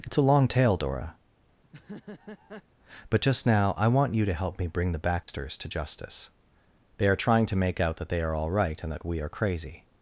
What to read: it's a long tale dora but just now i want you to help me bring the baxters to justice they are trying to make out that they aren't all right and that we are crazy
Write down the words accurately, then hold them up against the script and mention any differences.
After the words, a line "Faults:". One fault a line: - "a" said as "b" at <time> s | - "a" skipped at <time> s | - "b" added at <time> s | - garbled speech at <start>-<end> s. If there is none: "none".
it's a long tale dora but just now i want you to help me bring the baxters to justice they are trying to make out that they are all right and that we are crazy
Faults:
- "aren't" said as "are" at 8.2 s